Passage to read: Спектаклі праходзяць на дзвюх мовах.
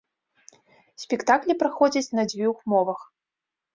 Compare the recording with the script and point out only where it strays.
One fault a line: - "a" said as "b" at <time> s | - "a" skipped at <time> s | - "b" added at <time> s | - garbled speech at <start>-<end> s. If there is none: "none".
none